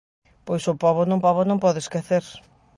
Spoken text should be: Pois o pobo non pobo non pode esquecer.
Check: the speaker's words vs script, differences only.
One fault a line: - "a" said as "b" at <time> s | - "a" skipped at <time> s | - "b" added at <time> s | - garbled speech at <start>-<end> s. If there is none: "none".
none